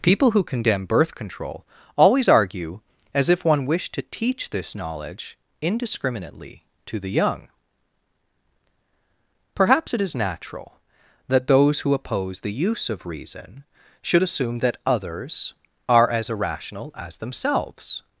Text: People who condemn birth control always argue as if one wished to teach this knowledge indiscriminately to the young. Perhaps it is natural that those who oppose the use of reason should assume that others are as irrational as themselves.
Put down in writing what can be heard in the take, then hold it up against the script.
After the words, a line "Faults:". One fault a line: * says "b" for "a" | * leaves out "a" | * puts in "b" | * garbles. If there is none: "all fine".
People who condemn birth control always argue as if one wished to teach this knowledge indiscriminately to the young. Perhaps it is natural that those who oppose the use of reason should assume that others are as irrational as themselves.
Faults:
all fine